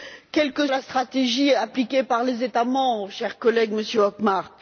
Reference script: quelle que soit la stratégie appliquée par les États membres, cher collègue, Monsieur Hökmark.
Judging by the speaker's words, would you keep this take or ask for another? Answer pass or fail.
fail